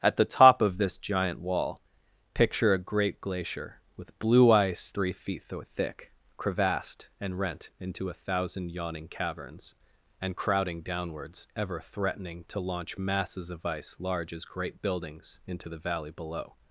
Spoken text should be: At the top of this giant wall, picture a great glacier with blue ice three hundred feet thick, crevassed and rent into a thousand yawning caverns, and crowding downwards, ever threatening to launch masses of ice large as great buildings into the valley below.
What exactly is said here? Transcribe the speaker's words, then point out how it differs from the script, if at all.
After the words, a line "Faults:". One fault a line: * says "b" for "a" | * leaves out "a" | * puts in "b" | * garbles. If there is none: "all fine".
At the top of this giant wall, picture a great glacier with blue ice three feet thick, crevassed and rent into a thousand yawning caverns, and crowding downwards, ever threatening to launch masses of ice large as great buildings into the valley below.
Faults:
* leaves out "hundred"